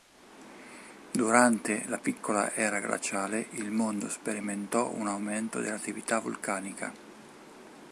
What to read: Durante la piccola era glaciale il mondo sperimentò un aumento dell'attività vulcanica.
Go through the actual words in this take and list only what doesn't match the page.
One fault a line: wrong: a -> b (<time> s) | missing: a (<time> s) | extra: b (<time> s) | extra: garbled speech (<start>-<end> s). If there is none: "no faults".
no faults